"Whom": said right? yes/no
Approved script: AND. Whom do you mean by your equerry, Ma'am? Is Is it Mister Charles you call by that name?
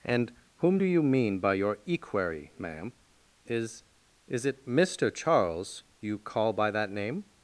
yes